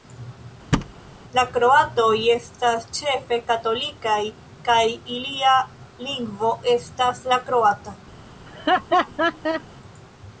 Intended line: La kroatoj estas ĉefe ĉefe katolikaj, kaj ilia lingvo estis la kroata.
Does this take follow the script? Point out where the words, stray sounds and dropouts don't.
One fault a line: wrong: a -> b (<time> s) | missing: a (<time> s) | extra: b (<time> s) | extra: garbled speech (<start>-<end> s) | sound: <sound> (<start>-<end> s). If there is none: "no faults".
sound: thud (0.7-0.9 s)
missing: ĉefe (3.4 s)
wrong: estis -> estas (6.8 s)
sound: laugh (8.5-9.6 s)